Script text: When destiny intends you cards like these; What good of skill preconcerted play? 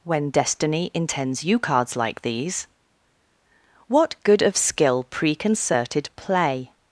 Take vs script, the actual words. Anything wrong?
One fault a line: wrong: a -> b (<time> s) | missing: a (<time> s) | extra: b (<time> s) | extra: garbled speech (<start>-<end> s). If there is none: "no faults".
no faults